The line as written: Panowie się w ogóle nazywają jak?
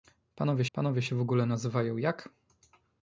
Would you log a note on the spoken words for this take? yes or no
yes